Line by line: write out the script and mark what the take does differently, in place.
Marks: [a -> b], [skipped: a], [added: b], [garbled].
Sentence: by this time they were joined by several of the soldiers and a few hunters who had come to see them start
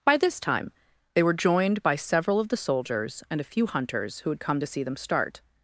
by this time they were joined by several of the soldiers and a few hunters who had come to see them start